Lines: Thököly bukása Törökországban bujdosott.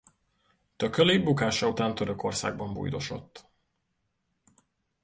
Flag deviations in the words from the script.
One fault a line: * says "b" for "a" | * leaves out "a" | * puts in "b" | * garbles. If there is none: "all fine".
* puts in "után"